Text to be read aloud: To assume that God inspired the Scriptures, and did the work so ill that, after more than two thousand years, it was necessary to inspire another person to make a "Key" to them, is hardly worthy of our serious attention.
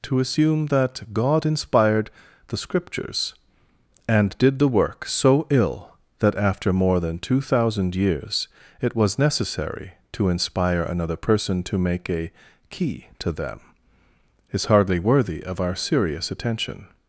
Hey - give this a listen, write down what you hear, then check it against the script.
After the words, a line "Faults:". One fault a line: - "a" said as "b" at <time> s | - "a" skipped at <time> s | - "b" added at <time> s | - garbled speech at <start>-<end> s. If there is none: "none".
To assume that God inspired the Scriptures, and did the work so ill that, after more than two thousand years, it was necessary to inspire another person to make a "Key" to them, is hardly worthy of our serious attention.
Faults:
none